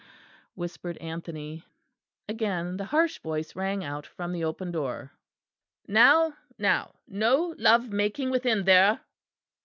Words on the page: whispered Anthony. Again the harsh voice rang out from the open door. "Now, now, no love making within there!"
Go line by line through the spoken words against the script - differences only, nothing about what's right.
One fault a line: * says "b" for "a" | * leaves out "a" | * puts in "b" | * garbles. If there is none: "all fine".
all fine